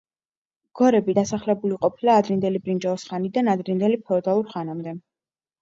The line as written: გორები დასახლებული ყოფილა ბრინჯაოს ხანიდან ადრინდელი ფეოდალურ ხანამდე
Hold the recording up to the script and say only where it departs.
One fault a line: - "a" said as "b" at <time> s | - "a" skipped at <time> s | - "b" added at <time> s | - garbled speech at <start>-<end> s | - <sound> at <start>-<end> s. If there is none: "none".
- "ადრინდელი" added at 2.2 s